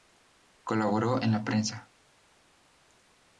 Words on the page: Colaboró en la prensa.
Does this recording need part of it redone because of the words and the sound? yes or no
no